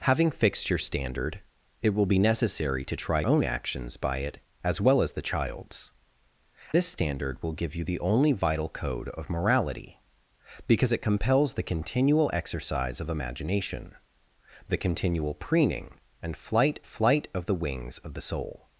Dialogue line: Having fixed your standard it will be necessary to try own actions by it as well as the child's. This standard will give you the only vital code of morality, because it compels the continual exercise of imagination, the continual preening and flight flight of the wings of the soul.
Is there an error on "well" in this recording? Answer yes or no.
no